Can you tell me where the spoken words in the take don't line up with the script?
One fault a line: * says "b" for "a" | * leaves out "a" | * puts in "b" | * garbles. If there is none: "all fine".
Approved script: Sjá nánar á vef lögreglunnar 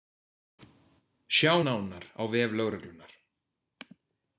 all fine